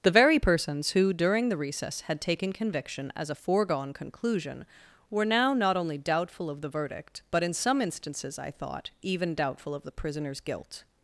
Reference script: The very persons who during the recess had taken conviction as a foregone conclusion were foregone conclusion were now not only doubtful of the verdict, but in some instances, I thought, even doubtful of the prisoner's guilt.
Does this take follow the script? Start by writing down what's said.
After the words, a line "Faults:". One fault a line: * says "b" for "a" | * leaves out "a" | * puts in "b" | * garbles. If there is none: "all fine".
The very persons who during the recess had taken conviction as a foregone conclusion were now not only doubtful of the verdict, but in some instances, I thought, even doubtful of the prisoner's guilt.
Faults:
* leaves out "foregone conclusion were"